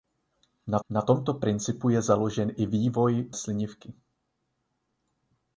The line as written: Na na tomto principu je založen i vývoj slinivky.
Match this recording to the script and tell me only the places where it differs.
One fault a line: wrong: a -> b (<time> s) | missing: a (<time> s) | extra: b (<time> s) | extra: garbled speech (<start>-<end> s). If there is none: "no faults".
no faults